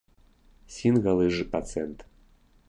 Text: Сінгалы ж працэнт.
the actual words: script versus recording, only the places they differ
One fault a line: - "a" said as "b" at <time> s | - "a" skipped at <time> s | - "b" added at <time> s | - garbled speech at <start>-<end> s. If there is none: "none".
none